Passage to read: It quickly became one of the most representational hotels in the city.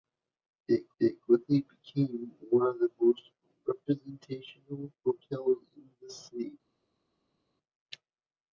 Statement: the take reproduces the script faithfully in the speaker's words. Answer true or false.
false